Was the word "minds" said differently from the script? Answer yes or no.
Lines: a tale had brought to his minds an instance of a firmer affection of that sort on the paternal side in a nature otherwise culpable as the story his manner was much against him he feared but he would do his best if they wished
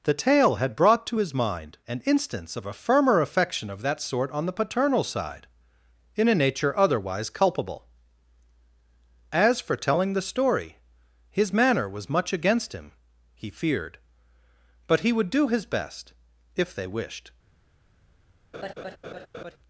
yes